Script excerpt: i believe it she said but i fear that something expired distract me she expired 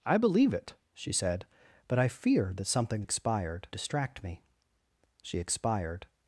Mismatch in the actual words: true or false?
false